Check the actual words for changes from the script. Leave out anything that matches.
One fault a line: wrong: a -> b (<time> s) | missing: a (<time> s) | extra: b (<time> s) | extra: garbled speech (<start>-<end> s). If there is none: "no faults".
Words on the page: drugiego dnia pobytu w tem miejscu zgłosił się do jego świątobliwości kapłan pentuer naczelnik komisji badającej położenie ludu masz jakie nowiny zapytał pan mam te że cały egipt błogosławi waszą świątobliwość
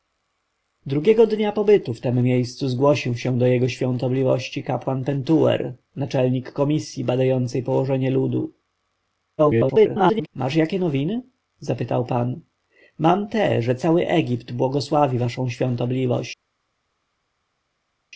extra: garbled speech (9.4-10.3 s)